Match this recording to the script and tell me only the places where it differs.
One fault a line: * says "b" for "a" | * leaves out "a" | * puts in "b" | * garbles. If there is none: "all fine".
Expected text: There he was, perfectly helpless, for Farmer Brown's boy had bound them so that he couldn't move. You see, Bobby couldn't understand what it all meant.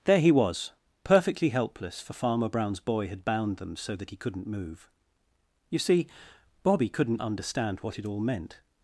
all fine